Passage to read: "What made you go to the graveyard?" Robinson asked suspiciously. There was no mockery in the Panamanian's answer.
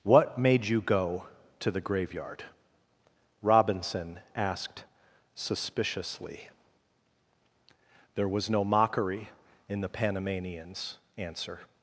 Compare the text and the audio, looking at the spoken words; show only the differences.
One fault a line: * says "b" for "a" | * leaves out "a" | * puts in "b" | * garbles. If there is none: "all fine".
all fine